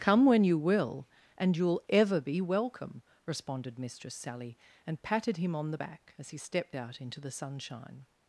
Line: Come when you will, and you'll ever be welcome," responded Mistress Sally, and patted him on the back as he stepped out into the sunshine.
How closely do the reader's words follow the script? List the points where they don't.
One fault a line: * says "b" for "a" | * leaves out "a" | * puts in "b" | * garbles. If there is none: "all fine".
all fine